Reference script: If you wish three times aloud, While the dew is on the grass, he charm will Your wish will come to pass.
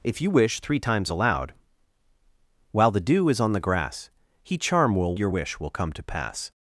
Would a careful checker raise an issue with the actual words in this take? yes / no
no